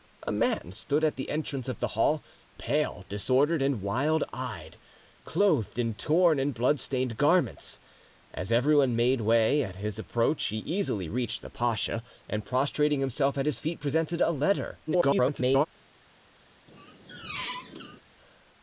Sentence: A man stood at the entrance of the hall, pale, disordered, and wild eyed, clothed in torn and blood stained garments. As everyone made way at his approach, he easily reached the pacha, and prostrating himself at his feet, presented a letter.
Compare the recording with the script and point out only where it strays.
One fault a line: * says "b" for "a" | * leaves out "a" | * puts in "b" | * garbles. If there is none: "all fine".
* garbles